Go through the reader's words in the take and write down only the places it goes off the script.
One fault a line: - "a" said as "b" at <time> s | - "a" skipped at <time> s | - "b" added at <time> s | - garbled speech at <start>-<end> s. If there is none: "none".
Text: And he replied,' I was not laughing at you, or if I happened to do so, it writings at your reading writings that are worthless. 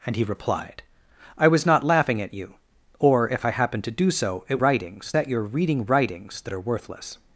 none